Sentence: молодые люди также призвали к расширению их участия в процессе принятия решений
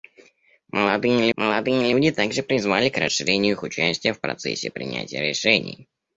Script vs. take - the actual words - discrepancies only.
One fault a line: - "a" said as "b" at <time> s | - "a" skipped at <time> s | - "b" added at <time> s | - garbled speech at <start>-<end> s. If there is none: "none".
- "молодые" added at 1.3 s